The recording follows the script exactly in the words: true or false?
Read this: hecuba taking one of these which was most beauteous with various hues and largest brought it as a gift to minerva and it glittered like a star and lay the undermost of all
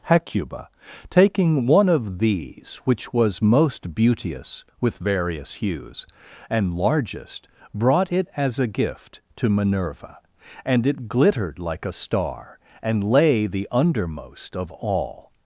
true